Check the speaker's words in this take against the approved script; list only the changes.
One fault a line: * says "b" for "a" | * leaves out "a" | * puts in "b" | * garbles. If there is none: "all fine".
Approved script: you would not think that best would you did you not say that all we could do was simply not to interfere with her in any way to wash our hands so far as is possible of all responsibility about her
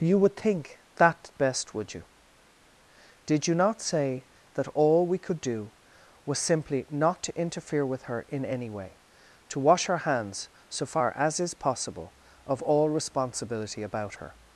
* leaves out "not"